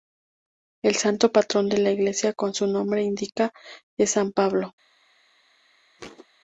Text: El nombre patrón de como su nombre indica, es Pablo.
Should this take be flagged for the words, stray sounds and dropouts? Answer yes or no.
yes